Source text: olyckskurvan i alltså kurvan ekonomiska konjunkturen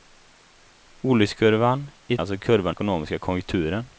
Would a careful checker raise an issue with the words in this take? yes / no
no